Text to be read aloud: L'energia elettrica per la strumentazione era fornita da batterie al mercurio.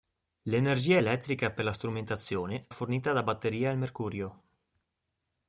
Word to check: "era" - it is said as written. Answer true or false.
false